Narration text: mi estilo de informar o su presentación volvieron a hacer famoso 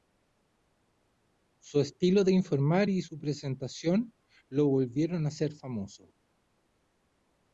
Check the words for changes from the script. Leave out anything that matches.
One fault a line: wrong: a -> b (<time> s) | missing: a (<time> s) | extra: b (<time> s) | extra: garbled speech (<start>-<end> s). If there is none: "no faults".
wrong: mi -> su (1.6 s)
wrong: o -> y (2.9 s)
extra: lo (4.5 s)